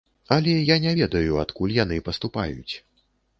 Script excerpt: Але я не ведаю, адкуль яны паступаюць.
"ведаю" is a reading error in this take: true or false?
false